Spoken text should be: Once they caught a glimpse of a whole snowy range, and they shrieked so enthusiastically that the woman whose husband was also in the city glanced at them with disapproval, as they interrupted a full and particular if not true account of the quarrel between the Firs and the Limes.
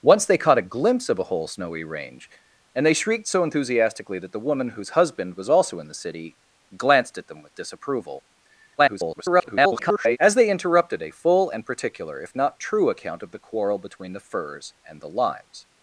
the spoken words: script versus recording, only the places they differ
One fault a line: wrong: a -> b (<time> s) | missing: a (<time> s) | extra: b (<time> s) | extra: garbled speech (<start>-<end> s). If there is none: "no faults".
extra: garbled speech (8.8-10.2 s)